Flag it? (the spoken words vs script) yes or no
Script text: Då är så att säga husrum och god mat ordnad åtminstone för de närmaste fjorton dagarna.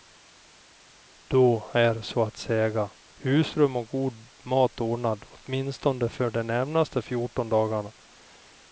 no